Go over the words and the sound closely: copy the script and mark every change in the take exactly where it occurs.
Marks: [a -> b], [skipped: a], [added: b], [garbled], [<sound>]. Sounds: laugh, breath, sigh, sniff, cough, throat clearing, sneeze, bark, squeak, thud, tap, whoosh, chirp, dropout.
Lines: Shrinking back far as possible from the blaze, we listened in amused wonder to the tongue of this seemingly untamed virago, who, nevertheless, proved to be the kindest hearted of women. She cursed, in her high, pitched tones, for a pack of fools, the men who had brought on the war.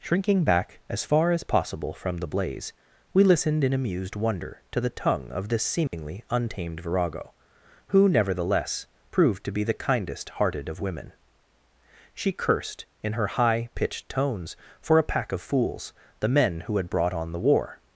Shrinking back [added: as] far as possible from the blaze, we listened in amused wonder to the tongue of this seemingly [dropout] untamed virago, who, nevertheless, proved to be the kindest hearted of women. She cursed, in her high, pitched tones, for a pack of fools, the men who had brought on the war.